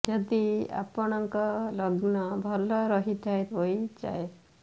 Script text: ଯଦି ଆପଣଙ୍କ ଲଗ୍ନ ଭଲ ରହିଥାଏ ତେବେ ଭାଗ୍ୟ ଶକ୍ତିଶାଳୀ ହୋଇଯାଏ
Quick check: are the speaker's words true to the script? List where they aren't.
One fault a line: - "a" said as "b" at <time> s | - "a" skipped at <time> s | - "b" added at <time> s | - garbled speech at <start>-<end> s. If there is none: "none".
- "ତେବେ ଭାଗ୍ୟ ଶକ୍ତିଶାଳୀ" skipped at 3.5 s